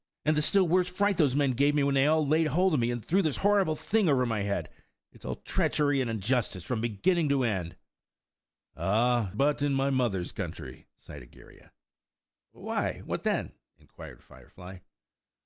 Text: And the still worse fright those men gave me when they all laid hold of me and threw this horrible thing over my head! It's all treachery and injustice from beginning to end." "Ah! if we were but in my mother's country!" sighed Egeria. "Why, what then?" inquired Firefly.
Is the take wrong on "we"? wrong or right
wrong